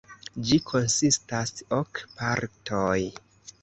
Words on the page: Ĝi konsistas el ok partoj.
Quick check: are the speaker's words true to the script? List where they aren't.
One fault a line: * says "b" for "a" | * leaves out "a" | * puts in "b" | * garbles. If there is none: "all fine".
* leaves out "el"